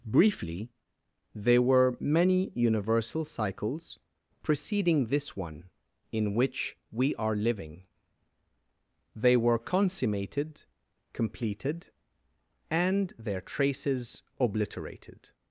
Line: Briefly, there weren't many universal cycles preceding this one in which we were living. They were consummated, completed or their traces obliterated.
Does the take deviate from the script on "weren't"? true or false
true